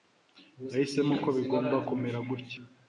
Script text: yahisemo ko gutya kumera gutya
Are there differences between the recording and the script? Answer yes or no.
yes